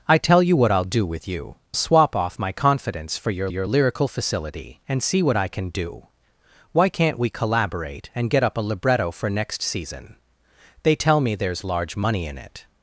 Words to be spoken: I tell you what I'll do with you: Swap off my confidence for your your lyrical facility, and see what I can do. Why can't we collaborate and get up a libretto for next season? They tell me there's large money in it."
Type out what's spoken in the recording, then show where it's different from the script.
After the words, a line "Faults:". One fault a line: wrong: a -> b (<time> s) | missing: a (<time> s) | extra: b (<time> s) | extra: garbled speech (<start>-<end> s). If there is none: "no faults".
I tell you what I'll do with you: Swap off my confidence for your your lyrical facility, and see what I can do. Why can't we collaborate and get up a libretto for next season? They tell me there's large money in it."
Faults:
no faults